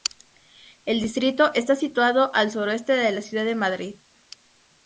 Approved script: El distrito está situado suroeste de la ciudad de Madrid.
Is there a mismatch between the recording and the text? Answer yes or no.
yes